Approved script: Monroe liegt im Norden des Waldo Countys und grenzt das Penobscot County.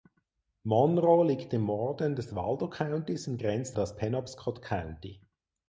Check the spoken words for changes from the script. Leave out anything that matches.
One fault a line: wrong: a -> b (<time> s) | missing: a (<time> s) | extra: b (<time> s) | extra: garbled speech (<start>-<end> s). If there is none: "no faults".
no faults